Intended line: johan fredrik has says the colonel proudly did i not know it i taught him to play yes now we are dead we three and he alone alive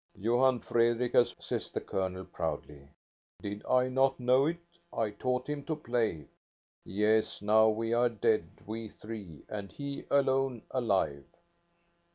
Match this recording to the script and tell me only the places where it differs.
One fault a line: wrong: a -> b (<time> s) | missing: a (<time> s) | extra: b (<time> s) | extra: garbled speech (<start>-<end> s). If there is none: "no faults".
no faults